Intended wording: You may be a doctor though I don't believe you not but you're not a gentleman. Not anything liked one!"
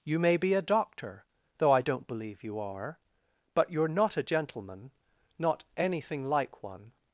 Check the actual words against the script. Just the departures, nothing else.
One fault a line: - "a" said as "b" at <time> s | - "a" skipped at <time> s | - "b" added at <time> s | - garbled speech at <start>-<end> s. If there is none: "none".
- "not" said as "are" at 2.6 s
- "liked" said as "like" at 6.3 s